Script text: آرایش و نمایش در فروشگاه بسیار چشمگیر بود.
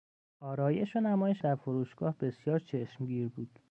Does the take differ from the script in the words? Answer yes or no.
no